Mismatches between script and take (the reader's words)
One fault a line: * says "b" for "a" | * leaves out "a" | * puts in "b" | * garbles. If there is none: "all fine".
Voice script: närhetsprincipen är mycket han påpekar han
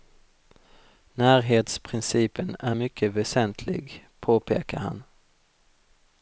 * says "väsentlig" for "han"